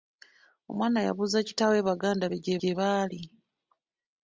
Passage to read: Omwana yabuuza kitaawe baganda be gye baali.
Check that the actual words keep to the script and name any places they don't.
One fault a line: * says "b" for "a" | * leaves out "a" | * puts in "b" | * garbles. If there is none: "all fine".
* puts in "gye"